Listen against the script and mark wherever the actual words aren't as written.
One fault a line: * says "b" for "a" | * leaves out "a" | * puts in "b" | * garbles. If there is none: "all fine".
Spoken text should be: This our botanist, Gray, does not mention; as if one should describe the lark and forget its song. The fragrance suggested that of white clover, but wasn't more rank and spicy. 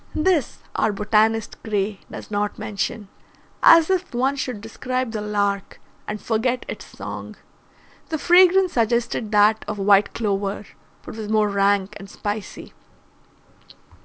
* says "was" for "wasn't"